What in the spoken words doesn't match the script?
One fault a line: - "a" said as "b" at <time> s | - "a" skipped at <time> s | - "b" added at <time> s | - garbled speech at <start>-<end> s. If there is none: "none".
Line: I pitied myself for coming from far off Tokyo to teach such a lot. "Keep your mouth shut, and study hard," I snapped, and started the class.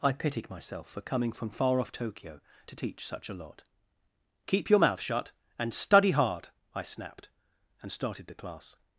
none